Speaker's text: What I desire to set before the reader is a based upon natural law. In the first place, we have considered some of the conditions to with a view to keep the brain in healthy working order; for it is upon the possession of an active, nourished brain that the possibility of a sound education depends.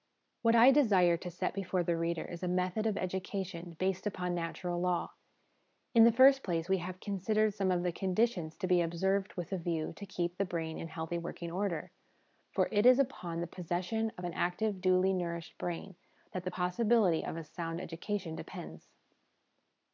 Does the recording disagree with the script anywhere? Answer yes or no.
yes